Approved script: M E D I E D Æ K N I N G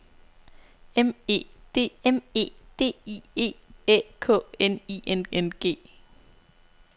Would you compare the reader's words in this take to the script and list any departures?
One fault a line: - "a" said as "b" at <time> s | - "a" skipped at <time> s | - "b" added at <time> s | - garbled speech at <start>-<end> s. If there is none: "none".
- "I" said as "m" at 2.0 s
- "I E" added at 3.1 s
- "N" added at 5.3 s